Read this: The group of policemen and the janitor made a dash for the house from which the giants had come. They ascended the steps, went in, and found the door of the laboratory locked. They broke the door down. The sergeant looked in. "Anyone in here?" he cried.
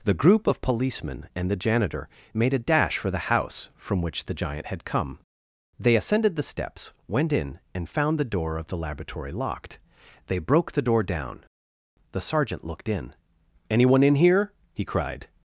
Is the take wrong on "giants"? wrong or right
wrong